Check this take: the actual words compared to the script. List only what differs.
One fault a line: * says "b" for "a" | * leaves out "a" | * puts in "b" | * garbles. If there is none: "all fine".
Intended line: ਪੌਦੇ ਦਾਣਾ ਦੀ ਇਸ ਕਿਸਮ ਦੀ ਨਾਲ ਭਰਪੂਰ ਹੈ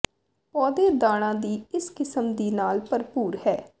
all fine